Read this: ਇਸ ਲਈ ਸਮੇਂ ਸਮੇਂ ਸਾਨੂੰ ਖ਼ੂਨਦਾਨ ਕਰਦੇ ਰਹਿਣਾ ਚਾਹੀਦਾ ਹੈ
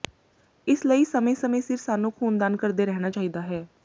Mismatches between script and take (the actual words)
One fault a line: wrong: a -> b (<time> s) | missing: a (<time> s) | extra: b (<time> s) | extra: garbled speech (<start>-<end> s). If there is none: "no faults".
extra: ਸਿਰ (1.6 s)